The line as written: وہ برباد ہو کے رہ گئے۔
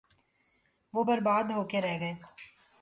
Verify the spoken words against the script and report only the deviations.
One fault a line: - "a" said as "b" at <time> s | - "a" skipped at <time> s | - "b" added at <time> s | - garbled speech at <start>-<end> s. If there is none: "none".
none